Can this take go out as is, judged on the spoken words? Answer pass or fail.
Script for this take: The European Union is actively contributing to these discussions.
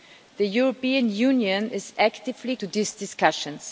fail